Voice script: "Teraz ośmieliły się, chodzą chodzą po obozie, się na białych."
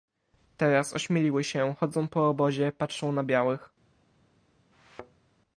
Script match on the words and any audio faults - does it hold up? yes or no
no